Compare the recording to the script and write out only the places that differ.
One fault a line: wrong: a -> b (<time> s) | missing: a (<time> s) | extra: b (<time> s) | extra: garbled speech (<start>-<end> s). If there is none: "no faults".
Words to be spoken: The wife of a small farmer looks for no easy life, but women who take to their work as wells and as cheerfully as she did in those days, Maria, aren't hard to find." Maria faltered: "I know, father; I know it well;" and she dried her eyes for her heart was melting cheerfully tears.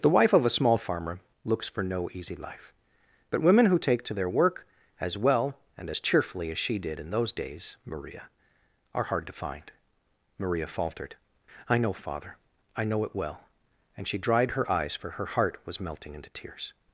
wrong: wells -> well (5.2 s)
wrong: aren't -> are (8.9 s)
wrong: cheerfully -> into (16.1 s)